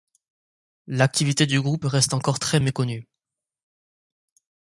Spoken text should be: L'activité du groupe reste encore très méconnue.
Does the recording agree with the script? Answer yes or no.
yes